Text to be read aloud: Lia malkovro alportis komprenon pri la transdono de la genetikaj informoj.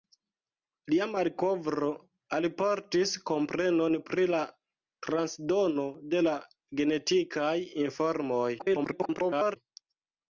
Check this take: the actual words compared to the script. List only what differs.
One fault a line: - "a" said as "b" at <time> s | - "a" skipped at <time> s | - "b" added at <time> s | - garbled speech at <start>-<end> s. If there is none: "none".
- garbled speech at 8.6-9.6 s